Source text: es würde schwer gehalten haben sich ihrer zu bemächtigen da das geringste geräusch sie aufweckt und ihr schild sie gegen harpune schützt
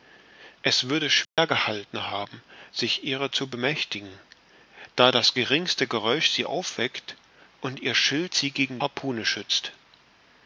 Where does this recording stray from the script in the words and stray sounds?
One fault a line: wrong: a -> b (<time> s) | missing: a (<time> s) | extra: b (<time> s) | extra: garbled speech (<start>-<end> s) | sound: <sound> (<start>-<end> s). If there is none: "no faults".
sound: dropout (1.2-1.4 s)